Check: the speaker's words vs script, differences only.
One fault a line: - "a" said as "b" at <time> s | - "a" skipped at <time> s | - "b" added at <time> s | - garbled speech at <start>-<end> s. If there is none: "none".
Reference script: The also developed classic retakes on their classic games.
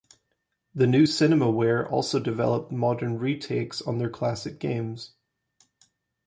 - "new Cinemaware" added at 0.9 s
- "classic" said as "modern" at 2.7 s